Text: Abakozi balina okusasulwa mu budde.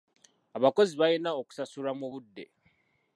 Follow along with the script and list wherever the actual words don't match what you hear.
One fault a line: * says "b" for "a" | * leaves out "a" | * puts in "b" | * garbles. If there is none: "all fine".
all fine